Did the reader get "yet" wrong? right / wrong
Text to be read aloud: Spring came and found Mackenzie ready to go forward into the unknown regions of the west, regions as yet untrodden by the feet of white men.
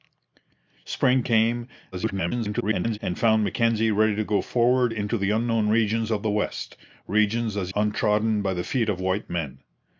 wrong